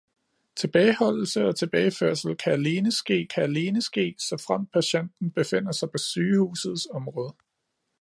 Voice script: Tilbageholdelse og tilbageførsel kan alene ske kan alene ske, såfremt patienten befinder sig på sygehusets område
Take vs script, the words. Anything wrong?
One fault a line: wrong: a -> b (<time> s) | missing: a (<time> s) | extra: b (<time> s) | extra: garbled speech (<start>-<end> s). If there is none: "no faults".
no faults